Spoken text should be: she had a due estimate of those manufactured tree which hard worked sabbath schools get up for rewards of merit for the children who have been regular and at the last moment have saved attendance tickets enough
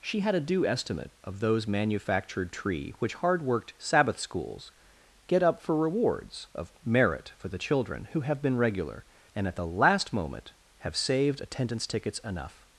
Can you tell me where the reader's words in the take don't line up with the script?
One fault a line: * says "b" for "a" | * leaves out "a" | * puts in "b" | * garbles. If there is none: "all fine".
all fine